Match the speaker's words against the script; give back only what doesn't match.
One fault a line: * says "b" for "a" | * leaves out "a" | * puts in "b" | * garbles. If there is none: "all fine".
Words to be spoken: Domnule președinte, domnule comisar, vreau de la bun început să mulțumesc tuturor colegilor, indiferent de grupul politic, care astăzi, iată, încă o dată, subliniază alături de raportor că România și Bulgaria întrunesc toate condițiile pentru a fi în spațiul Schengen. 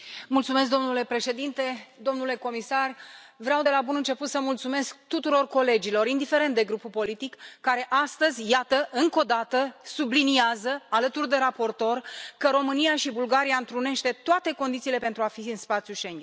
all fine